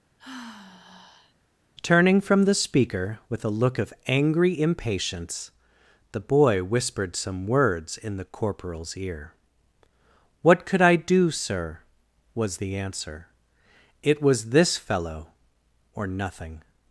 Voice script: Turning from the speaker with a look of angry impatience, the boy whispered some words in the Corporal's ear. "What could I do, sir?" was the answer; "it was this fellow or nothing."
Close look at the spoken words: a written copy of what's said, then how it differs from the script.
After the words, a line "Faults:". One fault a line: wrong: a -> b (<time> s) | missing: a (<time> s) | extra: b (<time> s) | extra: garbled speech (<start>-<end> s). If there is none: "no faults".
Turning from the speaker with a look of angry impatience, the boy whispered some words in the Corporal's ear. "What could I do, sir?" was the answer; "it was this fellow or nothing."
Faults:
no faults